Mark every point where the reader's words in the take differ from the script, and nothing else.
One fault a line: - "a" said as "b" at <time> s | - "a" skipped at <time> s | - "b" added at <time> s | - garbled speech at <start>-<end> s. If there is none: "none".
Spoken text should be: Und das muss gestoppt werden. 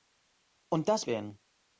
- "muss gestoppt" skipped at 1.1 s